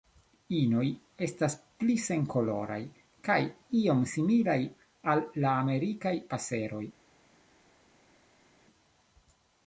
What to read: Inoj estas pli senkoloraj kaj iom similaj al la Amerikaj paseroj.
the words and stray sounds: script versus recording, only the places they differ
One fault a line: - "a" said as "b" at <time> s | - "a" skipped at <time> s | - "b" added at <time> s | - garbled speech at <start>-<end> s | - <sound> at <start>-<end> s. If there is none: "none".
none